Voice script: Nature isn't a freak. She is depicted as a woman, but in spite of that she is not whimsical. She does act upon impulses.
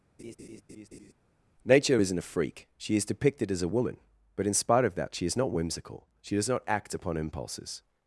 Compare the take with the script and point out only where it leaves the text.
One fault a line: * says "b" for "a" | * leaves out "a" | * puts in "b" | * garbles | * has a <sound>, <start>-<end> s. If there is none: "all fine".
* has a laugh, 0.2-1.1 s
* puts in "not"